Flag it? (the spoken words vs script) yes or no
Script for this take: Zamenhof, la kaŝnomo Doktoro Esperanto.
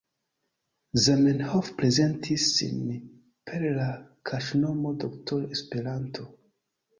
yes